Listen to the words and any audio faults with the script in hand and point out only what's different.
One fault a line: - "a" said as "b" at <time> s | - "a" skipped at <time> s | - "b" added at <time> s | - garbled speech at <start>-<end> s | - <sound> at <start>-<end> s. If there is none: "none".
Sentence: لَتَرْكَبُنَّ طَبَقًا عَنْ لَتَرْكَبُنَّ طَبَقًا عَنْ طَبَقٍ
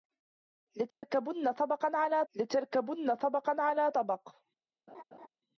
- dropout at 0.9-1.0 s
- laugh at 4.9-5.3 s